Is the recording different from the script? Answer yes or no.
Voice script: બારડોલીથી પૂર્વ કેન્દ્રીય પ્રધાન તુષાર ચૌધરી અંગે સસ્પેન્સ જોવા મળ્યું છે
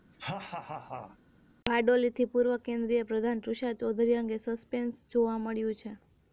no